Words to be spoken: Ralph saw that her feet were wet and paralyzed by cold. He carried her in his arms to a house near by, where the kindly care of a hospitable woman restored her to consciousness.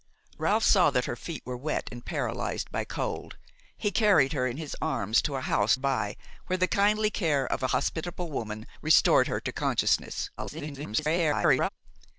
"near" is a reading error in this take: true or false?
true